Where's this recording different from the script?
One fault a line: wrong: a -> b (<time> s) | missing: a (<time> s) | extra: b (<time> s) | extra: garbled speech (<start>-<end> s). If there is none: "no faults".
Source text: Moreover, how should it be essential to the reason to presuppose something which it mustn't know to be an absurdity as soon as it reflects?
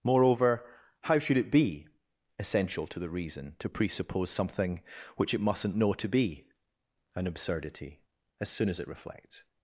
no faults